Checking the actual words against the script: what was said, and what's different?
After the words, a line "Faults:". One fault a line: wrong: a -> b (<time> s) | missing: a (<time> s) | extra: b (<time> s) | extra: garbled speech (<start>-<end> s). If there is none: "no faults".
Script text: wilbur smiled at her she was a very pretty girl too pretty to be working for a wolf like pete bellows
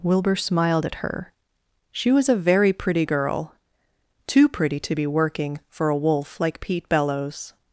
wilbur smiled at her she was a very pretty girl too pretty to be working for a wolf like pete bellows
Faults:
no faults